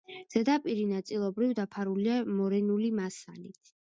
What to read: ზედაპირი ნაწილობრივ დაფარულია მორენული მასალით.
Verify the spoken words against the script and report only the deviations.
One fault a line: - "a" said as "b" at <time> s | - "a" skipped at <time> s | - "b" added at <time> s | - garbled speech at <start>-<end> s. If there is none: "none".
none